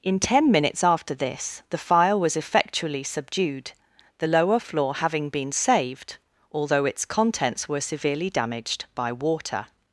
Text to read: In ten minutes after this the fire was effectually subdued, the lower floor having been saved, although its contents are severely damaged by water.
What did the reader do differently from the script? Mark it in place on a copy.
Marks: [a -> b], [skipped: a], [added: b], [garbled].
In ten minutes after this the fire was effectually subdued, the lower floor having been saved, although its contents [are -> were] severely damaged by water.